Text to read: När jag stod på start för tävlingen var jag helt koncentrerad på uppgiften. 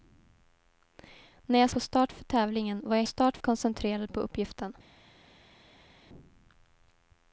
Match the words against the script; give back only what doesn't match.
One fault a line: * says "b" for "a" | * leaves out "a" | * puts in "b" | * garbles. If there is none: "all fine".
* leaves out "stod"
* says "start" for "helt"